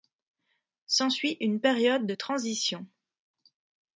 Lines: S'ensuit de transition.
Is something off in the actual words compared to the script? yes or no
yes